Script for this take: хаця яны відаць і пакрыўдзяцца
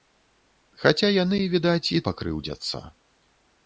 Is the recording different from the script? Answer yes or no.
no